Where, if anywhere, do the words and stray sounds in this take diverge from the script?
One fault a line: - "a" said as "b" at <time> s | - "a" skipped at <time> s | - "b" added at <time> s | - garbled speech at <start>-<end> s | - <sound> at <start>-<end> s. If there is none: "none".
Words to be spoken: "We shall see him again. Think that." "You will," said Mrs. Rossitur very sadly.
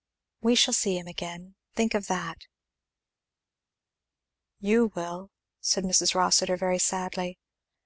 - "of" added at 1.9 s